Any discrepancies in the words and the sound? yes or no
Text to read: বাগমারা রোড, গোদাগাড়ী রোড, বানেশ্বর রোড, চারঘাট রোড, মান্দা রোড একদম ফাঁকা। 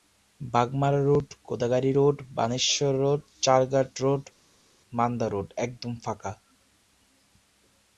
no